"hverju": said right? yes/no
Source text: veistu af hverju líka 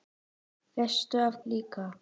no